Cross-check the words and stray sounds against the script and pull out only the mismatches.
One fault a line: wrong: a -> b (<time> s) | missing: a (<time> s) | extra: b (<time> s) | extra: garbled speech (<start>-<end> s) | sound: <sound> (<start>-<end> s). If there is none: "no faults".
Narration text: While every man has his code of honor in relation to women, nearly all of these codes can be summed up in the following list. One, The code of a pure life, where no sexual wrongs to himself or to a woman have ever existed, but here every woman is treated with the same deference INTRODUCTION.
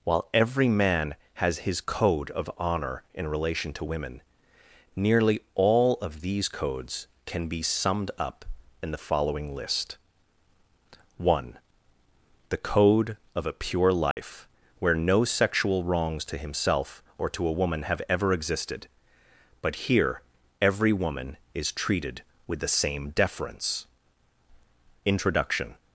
sound: dropout (14.1-14.2 s)